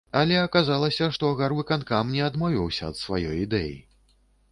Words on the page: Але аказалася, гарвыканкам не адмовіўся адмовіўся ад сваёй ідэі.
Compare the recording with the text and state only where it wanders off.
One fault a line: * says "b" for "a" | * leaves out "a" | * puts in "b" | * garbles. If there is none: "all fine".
* puts in "што"
* leaves out "адмовіўся"